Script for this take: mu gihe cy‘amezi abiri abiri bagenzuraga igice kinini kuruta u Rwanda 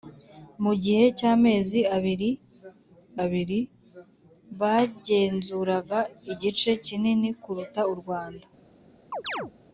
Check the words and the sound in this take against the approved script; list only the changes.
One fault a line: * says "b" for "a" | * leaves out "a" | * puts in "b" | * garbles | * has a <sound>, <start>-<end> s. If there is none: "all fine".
* has a chirp, 9.1-9.5 s